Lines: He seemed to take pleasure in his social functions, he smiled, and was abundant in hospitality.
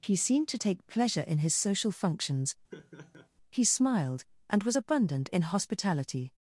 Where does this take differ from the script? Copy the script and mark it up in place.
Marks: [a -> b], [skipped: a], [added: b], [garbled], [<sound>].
He seemed to take pleasure in his social functions, [laugh] he smiled, and was abundant in hospitality.